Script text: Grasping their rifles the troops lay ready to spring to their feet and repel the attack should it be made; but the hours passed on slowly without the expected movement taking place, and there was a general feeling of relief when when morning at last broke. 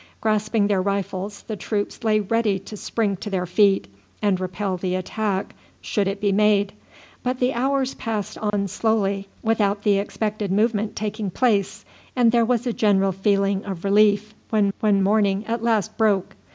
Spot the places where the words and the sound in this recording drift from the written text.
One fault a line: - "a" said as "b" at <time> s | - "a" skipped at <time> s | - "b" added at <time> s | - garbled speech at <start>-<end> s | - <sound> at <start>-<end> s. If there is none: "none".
- dropout at 8.5-8.5 s